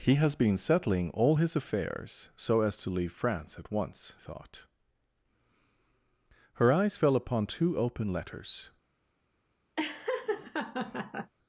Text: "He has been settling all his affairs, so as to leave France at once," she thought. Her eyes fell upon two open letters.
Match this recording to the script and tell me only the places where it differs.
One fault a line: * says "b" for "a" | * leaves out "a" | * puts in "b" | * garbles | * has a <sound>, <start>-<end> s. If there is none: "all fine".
* leaves out "she"
* has a laugh, 9.8-11.3 s